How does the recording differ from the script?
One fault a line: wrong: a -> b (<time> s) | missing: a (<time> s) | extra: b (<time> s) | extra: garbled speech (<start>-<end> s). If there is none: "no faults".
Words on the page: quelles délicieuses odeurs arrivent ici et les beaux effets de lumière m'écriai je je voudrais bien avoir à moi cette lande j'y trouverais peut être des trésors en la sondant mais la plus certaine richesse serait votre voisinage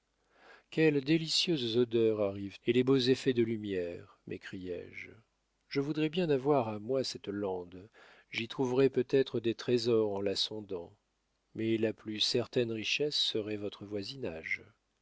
missing: ici (2.6 s)